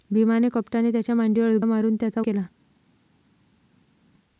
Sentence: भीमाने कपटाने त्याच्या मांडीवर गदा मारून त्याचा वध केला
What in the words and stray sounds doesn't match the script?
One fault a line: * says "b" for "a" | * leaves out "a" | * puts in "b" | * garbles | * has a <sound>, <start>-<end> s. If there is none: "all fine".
* leaves out "गदा"
* leaves out "वध"